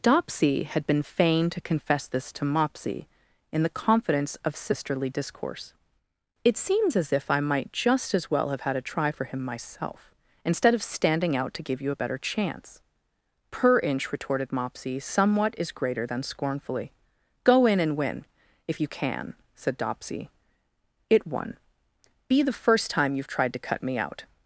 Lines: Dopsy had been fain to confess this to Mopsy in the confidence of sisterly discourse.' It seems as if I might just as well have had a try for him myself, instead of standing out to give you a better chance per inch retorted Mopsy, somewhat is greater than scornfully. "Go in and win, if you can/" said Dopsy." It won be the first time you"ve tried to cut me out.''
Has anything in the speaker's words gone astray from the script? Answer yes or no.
no